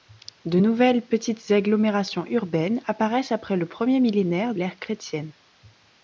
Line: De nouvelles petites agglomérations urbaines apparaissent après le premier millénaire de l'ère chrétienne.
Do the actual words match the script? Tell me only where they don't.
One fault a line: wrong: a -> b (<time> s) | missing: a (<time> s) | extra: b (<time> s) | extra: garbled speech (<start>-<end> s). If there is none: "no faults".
missing: de (4.5 s)